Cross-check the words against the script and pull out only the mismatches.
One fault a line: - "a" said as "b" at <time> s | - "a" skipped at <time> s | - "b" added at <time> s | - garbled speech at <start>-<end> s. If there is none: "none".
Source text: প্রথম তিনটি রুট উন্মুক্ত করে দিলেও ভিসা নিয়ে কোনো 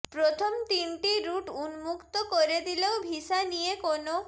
none